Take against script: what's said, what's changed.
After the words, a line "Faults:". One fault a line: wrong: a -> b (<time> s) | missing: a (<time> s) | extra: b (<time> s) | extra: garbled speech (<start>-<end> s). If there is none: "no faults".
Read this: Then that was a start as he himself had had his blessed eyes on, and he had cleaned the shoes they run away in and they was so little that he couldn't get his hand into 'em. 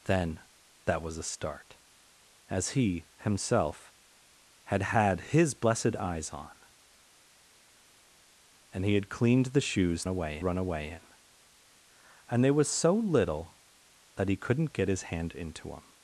Then that was a start as he himself had had his blessed eyes on, and he had cleaned the shoes away run away in and they was so little that he couldn't get his hand into 'em.
Faults:
wrong: they -> away (10.1 s)